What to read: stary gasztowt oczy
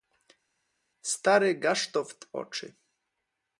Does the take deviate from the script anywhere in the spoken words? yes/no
no